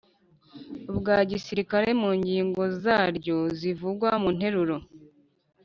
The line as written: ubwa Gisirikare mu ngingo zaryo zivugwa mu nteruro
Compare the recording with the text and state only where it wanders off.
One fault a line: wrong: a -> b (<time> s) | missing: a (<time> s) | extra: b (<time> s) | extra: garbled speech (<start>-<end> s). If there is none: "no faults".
no faults